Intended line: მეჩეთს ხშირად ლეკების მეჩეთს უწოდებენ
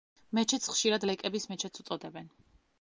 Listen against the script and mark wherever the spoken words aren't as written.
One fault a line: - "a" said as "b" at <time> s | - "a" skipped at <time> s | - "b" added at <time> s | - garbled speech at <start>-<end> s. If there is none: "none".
none